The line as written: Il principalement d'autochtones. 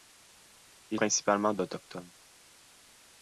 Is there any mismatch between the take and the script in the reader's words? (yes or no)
no